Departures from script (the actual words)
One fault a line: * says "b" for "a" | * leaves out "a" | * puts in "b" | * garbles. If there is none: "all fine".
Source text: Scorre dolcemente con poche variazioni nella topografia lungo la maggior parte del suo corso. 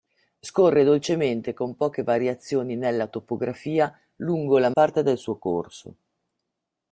* leaves out "maggior"